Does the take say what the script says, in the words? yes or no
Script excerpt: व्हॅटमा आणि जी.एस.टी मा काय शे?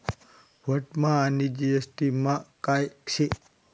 yes